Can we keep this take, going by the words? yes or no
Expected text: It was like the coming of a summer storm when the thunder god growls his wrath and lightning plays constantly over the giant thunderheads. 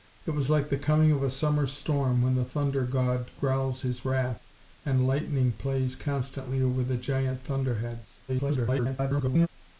no